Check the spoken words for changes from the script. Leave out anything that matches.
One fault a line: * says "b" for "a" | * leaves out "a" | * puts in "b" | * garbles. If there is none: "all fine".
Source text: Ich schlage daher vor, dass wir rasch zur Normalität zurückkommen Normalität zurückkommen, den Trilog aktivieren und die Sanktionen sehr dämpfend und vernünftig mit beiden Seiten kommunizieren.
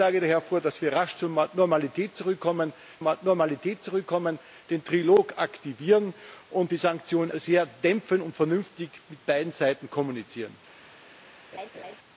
all fine